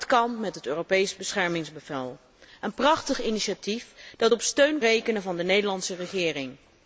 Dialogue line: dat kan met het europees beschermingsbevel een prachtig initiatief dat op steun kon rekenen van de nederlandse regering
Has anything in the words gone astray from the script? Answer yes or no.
yes